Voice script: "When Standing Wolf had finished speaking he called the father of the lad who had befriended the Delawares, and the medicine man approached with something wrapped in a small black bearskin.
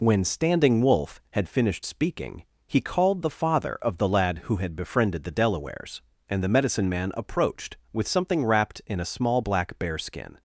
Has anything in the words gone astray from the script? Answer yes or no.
no